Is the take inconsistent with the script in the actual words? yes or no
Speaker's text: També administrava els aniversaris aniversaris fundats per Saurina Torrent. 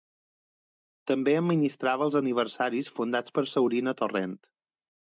yes